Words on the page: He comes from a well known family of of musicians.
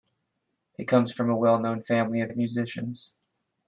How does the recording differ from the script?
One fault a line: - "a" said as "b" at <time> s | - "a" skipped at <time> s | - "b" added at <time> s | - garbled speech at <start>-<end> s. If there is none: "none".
none